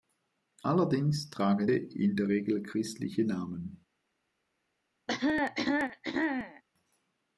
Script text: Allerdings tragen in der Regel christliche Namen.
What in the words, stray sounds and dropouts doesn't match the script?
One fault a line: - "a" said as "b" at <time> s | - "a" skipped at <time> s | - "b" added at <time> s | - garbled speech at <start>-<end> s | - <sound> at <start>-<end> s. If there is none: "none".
- cough at 5.1-6.6 s